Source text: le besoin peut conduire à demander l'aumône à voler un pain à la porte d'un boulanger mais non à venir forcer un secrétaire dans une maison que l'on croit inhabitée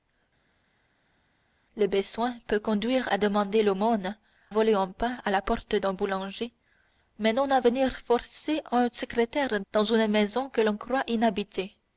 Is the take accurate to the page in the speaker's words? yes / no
no